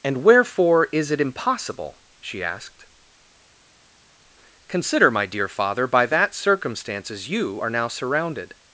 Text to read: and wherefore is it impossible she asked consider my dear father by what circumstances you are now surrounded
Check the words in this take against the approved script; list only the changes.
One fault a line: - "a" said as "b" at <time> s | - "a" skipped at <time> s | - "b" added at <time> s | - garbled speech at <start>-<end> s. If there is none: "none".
- "what" said as "that" at 6.1 s